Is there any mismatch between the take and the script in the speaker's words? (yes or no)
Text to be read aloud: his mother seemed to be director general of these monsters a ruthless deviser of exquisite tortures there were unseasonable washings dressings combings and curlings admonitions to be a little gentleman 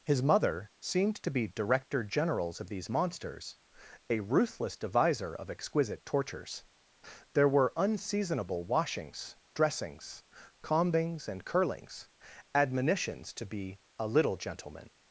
yes